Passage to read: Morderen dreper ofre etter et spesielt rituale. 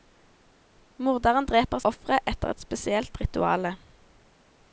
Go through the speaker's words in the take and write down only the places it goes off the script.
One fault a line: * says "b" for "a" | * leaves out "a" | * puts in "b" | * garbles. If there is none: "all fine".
all fine